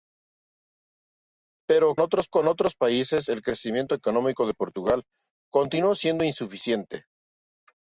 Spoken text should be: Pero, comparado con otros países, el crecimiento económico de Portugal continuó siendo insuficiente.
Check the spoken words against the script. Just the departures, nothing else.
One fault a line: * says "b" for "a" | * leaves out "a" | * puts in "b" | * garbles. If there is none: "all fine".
* says "otros" for "comparado"